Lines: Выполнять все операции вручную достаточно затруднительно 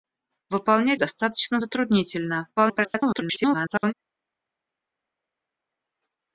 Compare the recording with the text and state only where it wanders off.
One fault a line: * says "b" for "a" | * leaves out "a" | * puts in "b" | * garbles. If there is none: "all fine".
* leaves out "все операции вручную"
* garbles